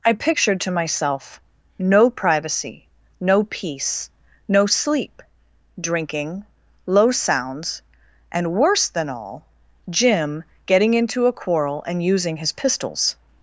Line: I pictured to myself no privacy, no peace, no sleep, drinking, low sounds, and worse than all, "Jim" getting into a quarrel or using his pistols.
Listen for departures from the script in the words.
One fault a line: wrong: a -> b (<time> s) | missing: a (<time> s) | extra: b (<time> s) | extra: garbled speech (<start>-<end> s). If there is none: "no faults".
wrong: or -> and (11.9 s)